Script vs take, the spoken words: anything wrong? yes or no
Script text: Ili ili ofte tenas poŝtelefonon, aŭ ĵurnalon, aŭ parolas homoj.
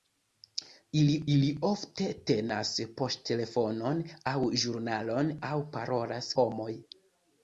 no